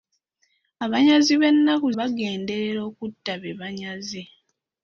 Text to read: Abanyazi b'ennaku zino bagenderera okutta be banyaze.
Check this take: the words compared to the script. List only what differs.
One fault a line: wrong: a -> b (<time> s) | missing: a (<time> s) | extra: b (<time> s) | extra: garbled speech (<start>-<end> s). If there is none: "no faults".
missing: zino (1.9 s)